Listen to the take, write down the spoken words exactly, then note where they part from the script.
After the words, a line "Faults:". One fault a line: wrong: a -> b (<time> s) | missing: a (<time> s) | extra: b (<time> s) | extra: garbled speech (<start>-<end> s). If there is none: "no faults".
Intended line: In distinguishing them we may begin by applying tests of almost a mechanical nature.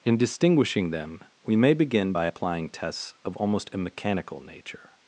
In distinguishing them we may begin by applying tests of almost a mechanical nature.
Faults:
no faults